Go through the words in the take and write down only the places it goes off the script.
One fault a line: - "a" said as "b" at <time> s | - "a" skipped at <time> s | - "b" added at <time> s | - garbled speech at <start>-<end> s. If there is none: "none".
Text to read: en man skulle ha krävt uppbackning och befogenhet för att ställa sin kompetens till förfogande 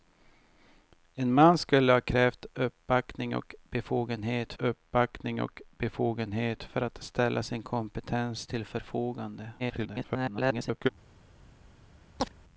- "uppbackning och befogenhet" added at 4.6 s
- garbled speech at 9.6-10.9 s